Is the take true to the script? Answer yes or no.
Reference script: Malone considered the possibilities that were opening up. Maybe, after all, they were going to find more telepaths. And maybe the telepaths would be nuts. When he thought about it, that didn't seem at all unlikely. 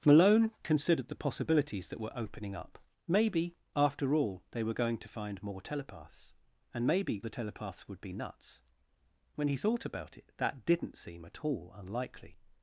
yes